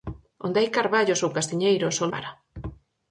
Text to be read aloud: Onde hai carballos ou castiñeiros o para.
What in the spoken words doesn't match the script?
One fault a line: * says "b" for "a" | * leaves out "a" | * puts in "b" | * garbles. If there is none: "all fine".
all fine